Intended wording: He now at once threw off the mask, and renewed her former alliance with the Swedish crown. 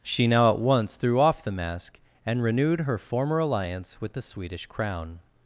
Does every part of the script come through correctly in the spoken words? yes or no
no